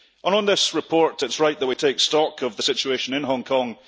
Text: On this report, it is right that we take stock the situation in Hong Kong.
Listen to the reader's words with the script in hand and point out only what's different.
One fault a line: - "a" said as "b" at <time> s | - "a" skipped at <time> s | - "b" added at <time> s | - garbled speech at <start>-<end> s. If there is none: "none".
- "of" added at 2.4 s